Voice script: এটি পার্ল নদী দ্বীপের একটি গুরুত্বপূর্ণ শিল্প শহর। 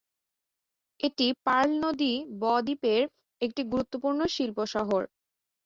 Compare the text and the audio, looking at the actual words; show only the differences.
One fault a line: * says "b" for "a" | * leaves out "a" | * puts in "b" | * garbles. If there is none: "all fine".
* puts in "ব"